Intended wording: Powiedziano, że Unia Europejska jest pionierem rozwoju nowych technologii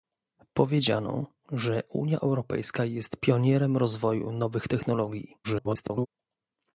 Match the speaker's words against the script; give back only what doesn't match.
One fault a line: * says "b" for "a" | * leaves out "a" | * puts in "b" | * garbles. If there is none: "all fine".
* garbles